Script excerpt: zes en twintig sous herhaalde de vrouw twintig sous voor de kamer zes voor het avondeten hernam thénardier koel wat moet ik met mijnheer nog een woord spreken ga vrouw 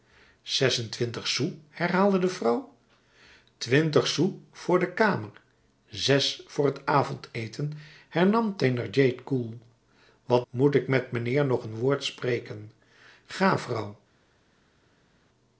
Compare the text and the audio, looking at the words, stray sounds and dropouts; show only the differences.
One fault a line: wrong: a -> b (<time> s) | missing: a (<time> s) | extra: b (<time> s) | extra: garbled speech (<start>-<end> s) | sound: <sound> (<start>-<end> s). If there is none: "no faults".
no faults